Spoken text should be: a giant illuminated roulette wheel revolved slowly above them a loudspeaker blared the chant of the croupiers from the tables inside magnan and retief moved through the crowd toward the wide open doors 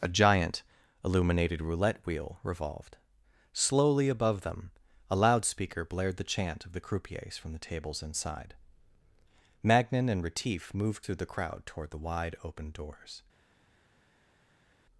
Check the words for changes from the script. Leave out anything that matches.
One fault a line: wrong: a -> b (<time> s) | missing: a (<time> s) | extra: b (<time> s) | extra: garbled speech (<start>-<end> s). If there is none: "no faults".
no faults